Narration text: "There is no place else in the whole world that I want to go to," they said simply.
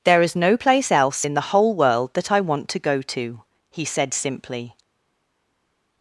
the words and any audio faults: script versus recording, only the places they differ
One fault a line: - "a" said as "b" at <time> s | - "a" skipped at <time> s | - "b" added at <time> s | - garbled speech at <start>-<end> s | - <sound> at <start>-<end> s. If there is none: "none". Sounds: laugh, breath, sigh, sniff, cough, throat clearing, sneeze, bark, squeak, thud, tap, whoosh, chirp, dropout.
- "they" said as "he" at 3.7 s